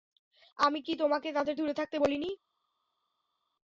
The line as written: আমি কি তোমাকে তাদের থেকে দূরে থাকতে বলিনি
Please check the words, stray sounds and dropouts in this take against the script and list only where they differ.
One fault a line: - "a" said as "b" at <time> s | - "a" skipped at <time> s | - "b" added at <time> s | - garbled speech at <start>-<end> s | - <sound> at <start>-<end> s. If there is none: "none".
- "থেকে" skipped at 1.6 s